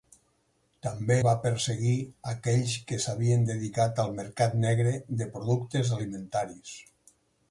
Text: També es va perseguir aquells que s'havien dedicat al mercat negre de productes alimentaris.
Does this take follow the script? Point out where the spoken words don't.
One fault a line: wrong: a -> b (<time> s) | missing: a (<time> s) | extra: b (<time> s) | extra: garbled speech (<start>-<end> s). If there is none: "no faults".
missing: es (1.2 s)